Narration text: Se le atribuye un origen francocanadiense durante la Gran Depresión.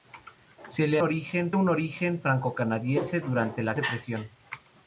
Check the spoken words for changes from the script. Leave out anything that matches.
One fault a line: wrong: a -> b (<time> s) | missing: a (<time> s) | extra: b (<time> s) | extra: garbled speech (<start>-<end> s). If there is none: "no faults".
wrong: atribuye -> origen (1.0 s)
missing: Gran (3.7 s)